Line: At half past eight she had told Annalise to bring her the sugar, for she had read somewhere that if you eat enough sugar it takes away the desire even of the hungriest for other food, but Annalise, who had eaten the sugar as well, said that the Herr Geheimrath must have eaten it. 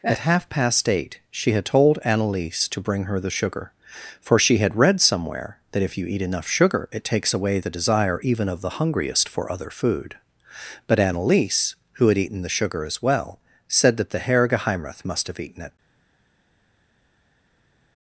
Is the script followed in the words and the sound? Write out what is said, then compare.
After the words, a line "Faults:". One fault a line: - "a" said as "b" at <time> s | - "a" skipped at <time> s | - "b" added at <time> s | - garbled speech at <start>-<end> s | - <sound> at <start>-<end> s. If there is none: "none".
At half past eight she had told Annalise to bring her the sugar, for she had read somewhere that if you eat enough sugar it takes away the desire even of the hungriest for other food, but Annalise, who had eaten the sugar as well, said that the Herr Geheimrath must have eaten it.
Faults:
none